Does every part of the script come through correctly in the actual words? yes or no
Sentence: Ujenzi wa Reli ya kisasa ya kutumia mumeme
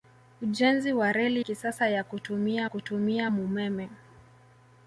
no